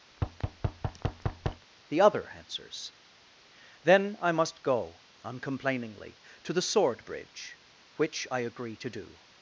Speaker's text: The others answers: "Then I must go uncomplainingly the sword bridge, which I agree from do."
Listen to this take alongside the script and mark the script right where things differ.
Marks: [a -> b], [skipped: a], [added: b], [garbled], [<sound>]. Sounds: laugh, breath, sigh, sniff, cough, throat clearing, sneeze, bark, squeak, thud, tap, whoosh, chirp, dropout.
[thud] The [others -> other] answers: "Then I must go uncomplainingly [added: to] the sword bridge, which I agree [from -> to] do."